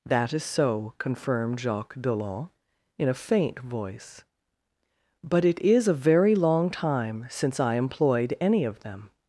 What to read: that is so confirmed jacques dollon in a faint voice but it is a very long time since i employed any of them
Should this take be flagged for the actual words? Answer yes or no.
no